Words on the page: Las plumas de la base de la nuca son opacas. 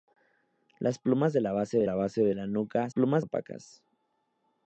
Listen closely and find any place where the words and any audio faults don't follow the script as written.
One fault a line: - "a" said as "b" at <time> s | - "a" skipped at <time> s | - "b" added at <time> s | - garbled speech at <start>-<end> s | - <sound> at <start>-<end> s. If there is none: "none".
- "base de la" added at 2.0 s
- "son" said as "plumas" at 2.9 s